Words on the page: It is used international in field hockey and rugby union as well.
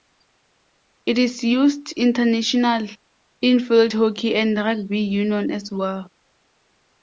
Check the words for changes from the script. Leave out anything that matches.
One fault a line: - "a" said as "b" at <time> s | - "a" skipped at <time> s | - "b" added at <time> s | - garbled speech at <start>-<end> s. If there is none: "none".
none